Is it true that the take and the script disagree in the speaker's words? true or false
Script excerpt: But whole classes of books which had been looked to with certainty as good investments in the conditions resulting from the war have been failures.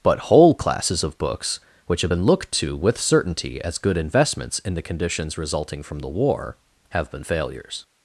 true